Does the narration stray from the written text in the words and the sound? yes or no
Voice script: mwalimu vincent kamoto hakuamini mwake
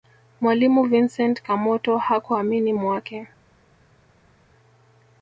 no